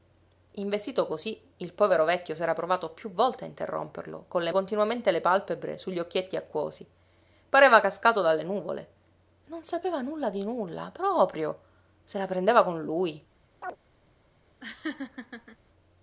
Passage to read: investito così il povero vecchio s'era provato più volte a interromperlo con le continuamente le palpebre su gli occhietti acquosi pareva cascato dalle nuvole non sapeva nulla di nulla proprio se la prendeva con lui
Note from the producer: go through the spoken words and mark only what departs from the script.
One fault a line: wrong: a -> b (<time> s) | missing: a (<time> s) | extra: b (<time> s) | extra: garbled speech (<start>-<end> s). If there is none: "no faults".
no faults